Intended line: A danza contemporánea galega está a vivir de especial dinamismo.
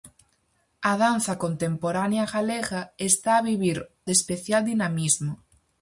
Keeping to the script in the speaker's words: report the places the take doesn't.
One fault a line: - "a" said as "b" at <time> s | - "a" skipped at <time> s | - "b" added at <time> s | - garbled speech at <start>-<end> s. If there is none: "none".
none